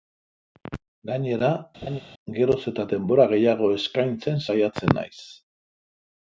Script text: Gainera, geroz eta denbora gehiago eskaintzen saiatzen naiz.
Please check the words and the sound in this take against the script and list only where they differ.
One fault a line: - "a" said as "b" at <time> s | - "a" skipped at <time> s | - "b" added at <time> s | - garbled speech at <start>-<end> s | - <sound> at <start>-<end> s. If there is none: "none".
- laugh at 1.8-2.0 s